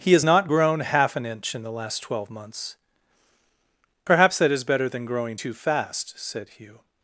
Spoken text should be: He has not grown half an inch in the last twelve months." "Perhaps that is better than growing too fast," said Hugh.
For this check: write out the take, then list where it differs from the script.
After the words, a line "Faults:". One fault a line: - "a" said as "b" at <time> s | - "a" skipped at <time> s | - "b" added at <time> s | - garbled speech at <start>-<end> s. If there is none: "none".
He has not grown half an inch in the last twelve months." "Perhaps that is better than growing too fast," said Hugh.
Faults:
none